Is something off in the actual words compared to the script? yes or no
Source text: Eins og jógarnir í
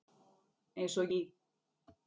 yes